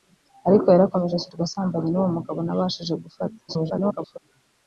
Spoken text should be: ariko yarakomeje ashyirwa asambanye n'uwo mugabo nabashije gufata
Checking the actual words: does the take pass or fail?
fail